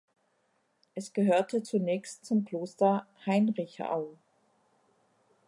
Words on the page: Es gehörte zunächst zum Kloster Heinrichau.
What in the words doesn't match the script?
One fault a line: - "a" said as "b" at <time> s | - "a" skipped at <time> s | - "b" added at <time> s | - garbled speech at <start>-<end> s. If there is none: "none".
none